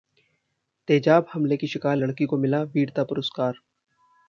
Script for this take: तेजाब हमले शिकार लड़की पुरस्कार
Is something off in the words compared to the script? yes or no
yes